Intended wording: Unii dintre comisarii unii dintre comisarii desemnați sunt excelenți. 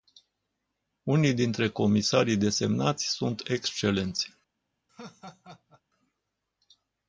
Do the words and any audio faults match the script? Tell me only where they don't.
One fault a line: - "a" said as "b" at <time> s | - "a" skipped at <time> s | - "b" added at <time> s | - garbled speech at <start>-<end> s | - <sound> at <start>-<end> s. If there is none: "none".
- "unii dintre comisarii" skipped at 2.4 s
- laugh at 4.9-5.8 s